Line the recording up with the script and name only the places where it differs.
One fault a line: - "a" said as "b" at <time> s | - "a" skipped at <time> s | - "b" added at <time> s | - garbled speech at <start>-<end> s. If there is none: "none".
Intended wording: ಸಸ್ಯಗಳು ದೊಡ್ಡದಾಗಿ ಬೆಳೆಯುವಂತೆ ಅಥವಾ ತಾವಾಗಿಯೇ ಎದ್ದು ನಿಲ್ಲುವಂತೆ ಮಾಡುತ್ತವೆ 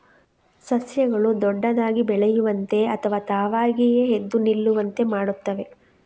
none